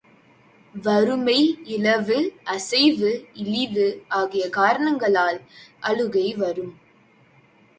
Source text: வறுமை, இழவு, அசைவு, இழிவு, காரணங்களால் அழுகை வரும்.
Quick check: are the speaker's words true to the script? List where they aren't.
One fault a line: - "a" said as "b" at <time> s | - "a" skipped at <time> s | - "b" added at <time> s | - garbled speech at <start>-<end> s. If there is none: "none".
- "ஆகிய" added at 4.1 s